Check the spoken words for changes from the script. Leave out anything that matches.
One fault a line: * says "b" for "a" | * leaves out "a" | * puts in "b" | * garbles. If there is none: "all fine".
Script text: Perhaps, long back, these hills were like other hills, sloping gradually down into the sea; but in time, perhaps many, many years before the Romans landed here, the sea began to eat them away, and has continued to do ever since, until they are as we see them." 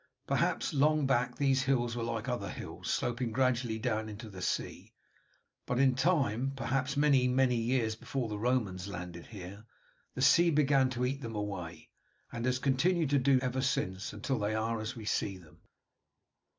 all fine